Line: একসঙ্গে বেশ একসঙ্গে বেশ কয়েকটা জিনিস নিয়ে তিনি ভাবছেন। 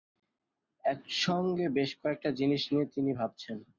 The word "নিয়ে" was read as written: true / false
true